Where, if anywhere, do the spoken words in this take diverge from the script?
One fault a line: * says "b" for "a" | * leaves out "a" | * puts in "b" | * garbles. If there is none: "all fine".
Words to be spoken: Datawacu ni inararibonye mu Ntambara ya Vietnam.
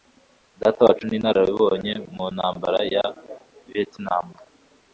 all fine